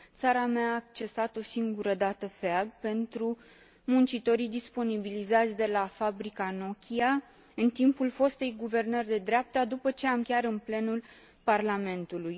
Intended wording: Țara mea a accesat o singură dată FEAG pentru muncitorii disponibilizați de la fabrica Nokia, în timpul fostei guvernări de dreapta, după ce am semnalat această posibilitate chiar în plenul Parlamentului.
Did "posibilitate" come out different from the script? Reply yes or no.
yes